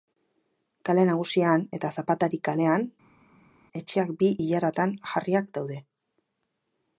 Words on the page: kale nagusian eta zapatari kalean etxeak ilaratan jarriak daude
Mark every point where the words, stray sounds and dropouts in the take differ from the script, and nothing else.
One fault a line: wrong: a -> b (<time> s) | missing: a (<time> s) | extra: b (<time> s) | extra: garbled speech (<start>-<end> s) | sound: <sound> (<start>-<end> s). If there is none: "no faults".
extra: bi (4.2 s)